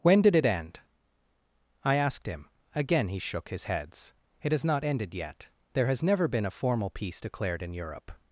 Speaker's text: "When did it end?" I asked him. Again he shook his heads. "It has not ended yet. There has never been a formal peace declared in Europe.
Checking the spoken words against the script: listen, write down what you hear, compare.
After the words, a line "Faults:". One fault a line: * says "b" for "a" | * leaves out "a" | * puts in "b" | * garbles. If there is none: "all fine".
"When did it end?" I asked him. Again he shook his heads. "It has not ended yet. There has never been a formal peace declared in Europe.
Faults:
all fine